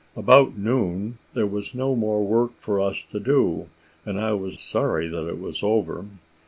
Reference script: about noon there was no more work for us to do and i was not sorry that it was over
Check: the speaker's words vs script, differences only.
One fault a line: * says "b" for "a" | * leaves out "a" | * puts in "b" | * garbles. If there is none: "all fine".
* leaves out "not"